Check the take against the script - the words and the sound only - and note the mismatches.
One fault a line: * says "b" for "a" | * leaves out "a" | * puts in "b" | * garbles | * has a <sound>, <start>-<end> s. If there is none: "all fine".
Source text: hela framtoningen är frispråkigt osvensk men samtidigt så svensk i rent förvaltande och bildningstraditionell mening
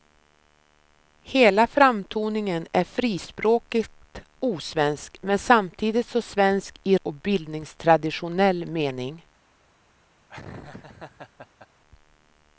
* leaves out "rent förvaltande"
* has a laugh, 10.3-11.7 s